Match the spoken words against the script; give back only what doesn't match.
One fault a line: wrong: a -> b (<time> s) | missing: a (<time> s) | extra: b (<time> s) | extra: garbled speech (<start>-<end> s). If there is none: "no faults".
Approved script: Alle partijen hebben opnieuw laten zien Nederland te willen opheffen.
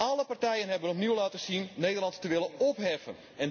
no faults